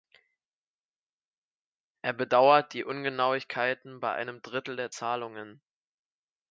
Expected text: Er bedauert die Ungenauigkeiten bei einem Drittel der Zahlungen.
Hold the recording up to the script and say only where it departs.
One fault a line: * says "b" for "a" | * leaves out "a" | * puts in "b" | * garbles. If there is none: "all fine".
all fine